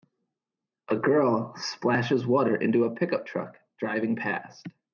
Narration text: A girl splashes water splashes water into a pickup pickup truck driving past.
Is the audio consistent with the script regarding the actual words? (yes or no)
no